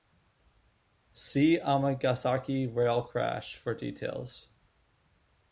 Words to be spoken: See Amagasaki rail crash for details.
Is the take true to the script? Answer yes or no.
yes